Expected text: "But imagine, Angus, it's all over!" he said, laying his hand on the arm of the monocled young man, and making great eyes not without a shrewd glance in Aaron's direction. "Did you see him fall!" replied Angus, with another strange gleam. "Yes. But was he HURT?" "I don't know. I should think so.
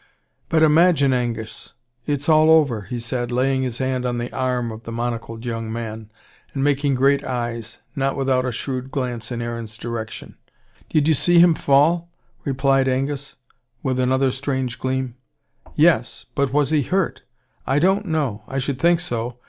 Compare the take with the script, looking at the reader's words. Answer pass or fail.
pass